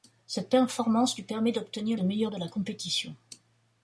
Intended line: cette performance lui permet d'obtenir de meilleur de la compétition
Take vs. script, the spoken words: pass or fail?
pass